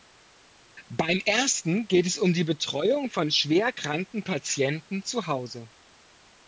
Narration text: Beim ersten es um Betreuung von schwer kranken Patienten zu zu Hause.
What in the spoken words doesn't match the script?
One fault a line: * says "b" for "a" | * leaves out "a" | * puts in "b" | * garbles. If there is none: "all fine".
* puts in "geht"
* puts in "die"
* leaves out "zu"